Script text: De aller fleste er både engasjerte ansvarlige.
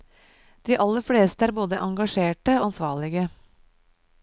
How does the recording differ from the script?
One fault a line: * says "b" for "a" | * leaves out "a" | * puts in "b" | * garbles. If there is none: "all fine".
all fine